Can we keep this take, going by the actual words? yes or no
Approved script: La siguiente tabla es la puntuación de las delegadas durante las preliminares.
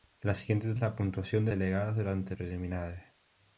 no